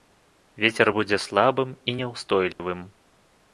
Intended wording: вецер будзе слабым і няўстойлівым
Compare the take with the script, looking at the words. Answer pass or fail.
pass